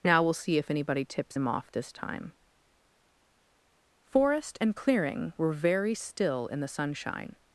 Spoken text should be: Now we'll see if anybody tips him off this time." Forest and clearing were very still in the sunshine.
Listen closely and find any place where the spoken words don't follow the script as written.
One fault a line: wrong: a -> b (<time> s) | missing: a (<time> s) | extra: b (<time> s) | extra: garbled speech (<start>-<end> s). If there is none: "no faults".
no faults